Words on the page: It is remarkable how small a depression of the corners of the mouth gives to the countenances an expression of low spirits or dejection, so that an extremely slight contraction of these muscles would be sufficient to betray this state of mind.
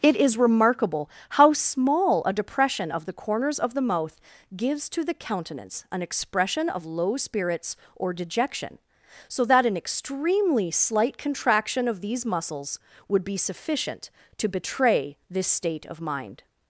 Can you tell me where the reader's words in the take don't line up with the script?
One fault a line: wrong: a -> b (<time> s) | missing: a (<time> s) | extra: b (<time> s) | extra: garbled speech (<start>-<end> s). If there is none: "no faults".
wrong: countenances -> countenance (5.1 s)